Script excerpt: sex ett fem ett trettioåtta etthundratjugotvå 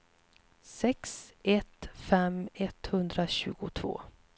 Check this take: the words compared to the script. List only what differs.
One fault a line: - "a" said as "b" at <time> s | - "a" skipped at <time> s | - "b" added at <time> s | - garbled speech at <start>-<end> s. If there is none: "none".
- "ett trettioåtta" skipped at 2.5 s